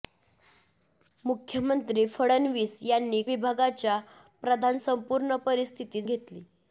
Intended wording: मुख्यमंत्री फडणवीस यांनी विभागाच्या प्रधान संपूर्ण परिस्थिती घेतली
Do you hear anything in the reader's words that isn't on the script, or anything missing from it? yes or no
no